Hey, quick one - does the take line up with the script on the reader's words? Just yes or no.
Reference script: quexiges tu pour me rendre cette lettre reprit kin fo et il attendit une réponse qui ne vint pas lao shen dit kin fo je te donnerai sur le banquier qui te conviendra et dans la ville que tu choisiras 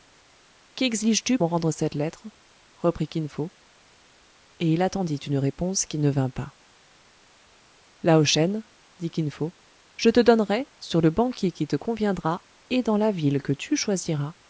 no